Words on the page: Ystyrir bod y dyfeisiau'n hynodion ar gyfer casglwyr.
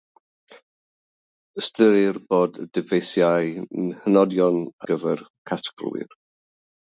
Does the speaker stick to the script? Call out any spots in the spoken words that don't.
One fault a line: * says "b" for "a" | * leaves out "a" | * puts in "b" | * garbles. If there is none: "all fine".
* leaves out "ar"